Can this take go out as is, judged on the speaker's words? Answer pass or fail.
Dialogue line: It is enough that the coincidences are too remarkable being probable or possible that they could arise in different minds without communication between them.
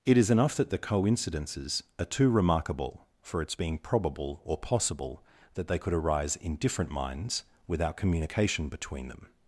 fail